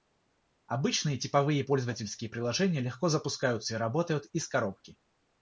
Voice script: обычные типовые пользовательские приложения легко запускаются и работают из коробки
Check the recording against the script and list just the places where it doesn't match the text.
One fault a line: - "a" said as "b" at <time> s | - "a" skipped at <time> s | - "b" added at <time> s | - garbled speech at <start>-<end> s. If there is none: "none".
none